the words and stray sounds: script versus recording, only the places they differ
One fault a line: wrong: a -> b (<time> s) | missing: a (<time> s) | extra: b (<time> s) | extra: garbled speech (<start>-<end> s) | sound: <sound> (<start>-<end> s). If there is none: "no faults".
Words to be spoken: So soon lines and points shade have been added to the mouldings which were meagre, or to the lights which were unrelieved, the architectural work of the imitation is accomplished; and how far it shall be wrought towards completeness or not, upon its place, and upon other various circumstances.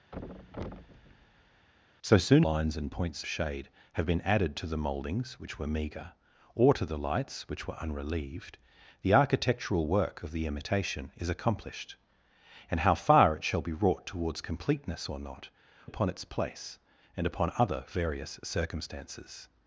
sound: thud (0.1-1.7 s)